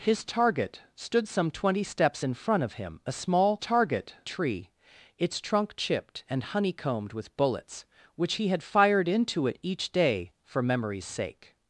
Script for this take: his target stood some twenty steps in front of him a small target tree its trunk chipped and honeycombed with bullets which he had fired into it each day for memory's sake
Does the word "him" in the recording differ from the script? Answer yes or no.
no